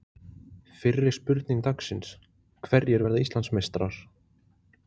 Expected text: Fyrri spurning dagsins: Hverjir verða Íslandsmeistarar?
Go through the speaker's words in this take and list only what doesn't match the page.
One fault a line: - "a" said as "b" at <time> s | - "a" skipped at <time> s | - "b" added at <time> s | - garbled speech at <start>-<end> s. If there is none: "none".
none